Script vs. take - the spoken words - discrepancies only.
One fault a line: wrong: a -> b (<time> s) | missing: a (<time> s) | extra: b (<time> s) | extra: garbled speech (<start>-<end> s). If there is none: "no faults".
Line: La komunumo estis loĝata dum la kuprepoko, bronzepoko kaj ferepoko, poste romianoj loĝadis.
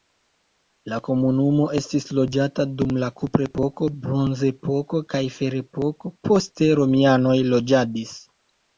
no faults